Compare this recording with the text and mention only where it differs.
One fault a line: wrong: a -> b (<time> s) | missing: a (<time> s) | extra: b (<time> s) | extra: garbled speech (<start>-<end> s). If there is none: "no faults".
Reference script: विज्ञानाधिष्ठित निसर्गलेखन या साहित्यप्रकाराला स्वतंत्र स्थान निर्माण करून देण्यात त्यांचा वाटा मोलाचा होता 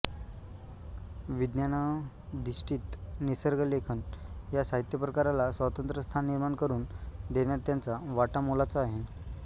wrong: होता -> आहे (8.8 s)